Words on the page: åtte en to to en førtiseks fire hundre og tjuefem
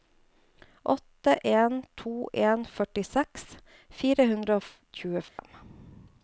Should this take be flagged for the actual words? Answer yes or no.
yes